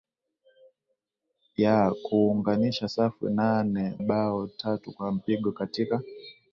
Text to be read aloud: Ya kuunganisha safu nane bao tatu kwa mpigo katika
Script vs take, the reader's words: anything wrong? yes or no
no